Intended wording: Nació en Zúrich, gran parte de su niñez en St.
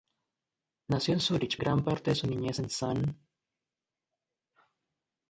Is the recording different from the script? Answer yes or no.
no